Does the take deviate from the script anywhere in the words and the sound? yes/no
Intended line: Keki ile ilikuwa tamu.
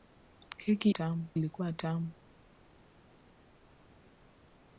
yes